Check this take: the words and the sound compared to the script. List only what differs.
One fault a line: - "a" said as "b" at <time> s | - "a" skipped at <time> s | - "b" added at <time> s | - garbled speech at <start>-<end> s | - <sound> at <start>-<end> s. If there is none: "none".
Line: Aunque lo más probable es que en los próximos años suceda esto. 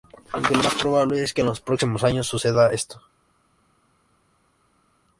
none